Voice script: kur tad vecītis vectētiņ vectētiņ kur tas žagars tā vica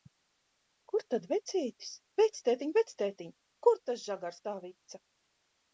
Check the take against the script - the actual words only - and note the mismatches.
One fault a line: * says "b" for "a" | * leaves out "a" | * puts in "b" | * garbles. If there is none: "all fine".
all fine